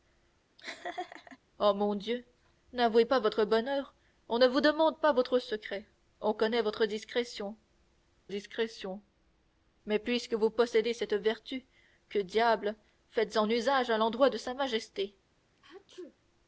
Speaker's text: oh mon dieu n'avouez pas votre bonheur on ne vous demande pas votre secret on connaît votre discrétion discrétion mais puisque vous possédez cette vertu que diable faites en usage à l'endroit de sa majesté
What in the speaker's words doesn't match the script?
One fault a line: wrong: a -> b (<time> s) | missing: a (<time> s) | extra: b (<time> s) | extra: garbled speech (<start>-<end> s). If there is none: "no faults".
no faults